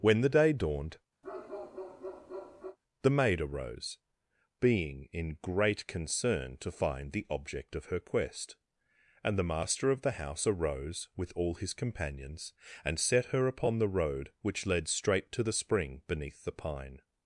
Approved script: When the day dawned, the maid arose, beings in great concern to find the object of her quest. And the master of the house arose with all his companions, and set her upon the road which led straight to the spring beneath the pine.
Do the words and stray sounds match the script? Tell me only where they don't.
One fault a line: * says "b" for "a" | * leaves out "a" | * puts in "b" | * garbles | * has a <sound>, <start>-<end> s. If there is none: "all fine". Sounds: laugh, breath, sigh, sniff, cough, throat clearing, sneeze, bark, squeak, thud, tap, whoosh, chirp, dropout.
* has a bark, 1.2-2.8 s
* says "being" for "beings"